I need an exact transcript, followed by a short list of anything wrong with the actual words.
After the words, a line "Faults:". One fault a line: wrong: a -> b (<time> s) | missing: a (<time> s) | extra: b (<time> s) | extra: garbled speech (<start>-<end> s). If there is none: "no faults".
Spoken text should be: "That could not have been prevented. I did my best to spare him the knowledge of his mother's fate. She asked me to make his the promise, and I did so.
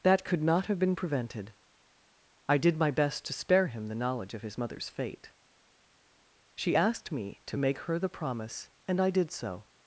"That could not have been prevented. I did my best to spare him the knowledge of his mother's fate. She asked me to make her the promise, and I did so.
Faults:
wrong: his -> her (7.8 s)